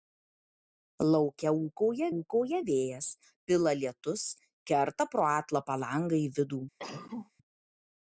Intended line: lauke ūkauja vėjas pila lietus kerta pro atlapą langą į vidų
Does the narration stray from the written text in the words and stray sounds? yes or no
yes